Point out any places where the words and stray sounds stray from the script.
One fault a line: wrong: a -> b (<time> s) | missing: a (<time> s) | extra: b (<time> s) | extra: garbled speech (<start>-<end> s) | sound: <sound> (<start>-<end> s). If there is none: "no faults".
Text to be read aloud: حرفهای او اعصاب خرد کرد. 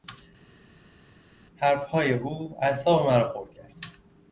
extra: مرا (3.1 s)